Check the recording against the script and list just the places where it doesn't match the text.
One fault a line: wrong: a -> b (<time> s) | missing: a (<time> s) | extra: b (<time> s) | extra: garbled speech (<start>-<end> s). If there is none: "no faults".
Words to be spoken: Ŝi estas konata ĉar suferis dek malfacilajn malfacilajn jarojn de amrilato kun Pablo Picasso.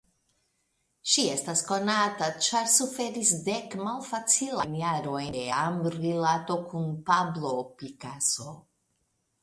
missing: malfacilajn (4.8 s)